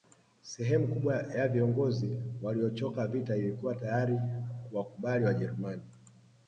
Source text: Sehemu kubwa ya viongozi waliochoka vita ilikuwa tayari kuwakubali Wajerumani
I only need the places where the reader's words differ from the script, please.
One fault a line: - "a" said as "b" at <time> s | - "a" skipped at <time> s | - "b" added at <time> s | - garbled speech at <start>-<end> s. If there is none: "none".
none